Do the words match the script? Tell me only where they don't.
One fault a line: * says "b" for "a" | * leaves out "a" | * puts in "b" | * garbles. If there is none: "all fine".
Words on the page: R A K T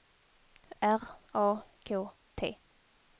all fine